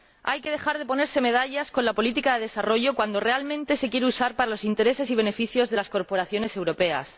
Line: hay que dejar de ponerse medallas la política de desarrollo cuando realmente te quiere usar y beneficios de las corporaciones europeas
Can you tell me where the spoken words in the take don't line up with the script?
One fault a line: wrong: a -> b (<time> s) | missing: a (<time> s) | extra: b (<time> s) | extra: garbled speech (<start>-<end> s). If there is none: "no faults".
extra: con (1.7 s)
wrong: te -> se (3.8 s)
extra: para los intereses (4.3 s)